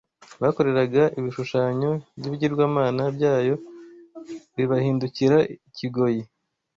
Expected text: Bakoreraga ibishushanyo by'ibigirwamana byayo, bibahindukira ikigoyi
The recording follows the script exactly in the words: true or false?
true